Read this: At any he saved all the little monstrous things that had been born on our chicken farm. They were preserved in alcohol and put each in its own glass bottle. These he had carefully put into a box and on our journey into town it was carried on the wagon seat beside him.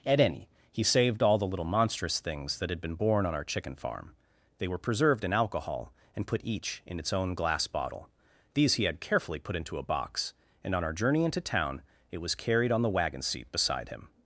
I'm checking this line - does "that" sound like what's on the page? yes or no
yes